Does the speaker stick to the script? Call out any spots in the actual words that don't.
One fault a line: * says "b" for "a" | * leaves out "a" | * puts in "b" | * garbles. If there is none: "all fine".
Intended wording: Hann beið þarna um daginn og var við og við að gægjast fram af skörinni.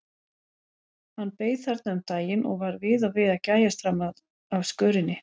all fine